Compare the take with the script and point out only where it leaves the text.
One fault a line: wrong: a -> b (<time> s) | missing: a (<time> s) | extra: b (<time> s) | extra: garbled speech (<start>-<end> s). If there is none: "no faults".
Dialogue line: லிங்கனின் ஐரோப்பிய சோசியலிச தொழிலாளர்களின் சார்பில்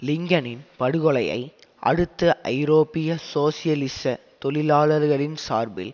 extra: படுகொலையை அடுத்து (0.8 s)